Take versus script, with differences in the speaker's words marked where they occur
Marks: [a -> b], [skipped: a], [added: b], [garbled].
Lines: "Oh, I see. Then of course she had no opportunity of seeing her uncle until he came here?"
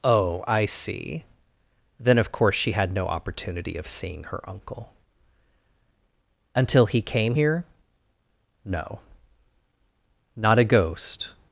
"Oh, I see. Then of course she had no opportunity of seeing her uncle until he came here?" [added: No not a ghost]